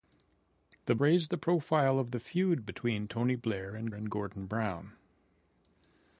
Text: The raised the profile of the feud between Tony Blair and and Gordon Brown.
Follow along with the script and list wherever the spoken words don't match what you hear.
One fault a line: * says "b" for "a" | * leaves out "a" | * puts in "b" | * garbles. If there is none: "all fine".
all fine